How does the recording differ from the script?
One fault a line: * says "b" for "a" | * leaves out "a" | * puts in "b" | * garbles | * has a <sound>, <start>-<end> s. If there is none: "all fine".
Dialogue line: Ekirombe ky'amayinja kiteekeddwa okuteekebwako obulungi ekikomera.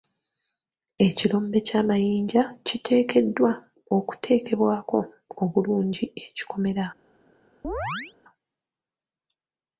* has a chirp, 7.6-8.1 s